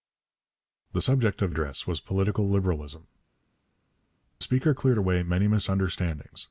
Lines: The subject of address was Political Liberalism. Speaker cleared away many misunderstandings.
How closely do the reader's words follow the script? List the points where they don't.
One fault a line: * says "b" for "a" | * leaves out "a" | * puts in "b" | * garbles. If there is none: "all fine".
all fine